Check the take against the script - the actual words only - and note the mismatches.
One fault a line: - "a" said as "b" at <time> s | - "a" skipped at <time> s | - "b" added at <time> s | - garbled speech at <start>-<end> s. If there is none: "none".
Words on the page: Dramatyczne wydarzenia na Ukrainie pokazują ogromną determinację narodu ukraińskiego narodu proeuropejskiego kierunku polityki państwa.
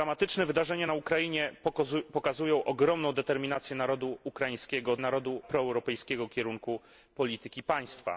none